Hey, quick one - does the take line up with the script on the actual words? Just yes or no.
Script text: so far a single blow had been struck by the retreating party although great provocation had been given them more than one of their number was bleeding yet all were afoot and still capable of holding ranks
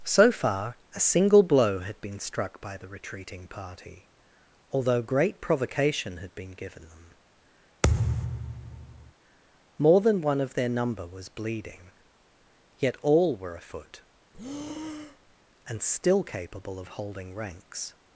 yes